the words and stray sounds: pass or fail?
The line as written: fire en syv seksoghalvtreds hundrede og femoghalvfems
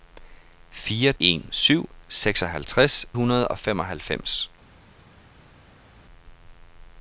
pass